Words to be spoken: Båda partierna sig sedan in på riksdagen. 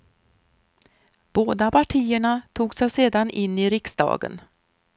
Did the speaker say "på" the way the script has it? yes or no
no